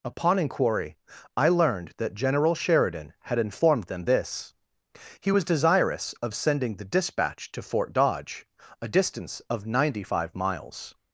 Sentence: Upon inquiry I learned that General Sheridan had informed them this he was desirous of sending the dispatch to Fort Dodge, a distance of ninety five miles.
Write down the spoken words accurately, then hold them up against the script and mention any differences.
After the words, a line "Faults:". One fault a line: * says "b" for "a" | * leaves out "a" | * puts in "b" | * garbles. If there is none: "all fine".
Upon inquiry I learned that General Sheridan had informed them this he was desirous of sending the dispatch to Fort Dodge, a distance of ninety five miles.
Faults:
all fine